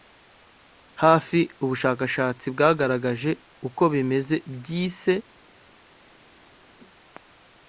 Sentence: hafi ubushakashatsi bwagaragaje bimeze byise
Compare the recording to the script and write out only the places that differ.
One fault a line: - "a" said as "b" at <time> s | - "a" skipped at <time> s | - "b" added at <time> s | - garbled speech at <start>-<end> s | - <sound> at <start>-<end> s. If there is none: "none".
- "uko" added at 3.7 s